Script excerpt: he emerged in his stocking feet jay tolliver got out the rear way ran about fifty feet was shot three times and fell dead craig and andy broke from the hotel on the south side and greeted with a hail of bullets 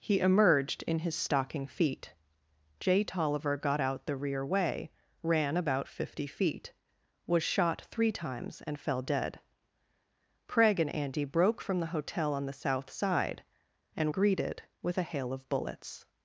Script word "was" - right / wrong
right